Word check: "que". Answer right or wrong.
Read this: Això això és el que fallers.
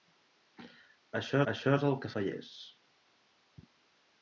right